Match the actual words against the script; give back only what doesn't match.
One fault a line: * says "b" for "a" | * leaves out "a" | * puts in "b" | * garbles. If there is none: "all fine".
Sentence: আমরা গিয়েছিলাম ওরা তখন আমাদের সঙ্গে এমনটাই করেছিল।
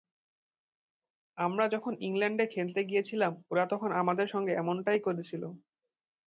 * puts in "যখন ইংল্যান্ডে খেলতে"